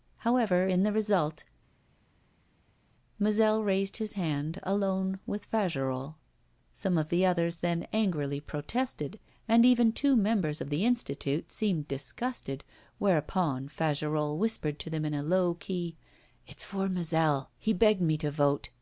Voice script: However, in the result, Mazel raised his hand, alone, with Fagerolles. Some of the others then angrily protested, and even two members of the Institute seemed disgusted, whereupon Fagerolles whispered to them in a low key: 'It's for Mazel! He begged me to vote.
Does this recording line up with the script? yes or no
yes